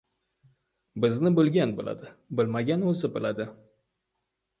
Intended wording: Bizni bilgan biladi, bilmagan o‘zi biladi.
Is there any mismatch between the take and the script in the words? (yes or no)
no